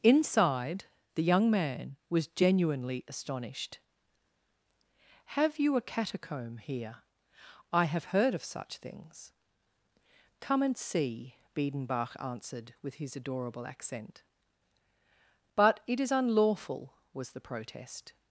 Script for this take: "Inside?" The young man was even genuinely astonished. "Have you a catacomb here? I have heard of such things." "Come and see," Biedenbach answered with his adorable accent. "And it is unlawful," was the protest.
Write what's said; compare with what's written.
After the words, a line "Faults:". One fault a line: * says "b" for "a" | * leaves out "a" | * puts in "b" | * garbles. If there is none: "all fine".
"Inside?" The young man was genuinely astonished. "Have you a catacomb here? I have heard of such things." "Come and see," Biedenbach answered with his adorable accent. "But it is unlawful," was the protest.
Faults:
* leaves out "even"
* says "But" for "And"